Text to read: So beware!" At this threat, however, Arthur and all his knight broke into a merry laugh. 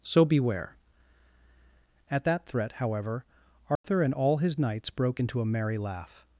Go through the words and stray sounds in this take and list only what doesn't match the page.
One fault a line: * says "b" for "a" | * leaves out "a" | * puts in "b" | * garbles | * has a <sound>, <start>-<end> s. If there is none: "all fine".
* says "that" for "this"
* has a dropout, 3.8-3.8 s
* says "knights" for "knight"